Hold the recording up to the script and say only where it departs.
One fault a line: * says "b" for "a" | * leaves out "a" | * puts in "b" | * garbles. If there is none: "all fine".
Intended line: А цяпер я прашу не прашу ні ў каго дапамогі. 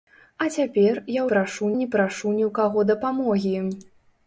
all fine